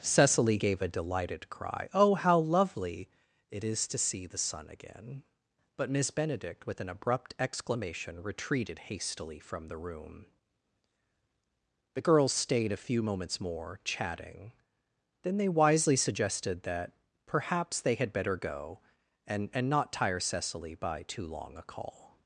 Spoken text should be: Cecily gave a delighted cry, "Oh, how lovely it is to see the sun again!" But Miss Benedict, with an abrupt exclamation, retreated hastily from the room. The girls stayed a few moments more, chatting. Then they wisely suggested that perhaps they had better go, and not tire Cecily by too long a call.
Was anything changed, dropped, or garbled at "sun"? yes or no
no